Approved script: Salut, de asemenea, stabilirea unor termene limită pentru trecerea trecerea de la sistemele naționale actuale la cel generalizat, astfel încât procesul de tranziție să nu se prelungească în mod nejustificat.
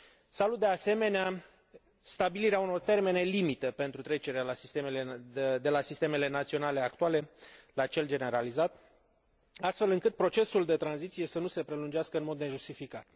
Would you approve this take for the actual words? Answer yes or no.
no